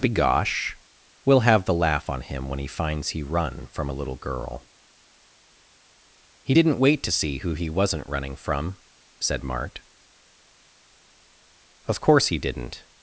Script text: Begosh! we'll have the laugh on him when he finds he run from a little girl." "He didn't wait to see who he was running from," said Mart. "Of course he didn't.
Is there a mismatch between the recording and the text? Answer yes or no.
yes